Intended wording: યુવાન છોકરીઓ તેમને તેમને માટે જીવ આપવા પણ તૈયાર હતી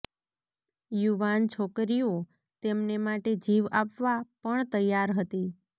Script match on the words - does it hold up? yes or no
no